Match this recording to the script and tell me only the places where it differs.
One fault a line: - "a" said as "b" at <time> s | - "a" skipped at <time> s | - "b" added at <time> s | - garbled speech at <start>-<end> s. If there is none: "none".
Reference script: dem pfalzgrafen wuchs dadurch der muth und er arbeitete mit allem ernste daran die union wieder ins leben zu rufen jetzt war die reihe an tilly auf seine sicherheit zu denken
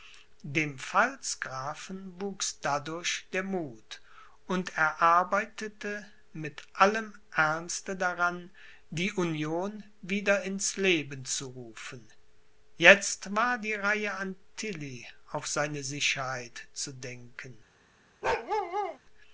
none